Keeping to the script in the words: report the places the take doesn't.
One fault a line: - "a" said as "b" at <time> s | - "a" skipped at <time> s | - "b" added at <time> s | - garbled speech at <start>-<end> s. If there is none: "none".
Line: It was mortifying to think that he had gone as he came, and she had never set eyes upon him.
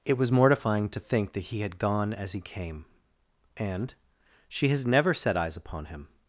- "had" said as "has" at 4.7 s